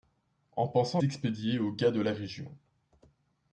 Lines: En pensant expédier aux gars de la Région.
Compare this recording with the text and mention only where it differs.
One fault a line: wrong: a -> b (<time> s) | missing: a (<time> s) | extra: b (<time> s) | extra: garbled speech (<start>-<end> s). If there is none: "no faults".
no faults